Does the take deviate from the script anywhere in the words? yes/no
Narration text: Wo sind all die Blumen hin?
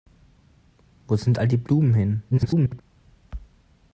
yes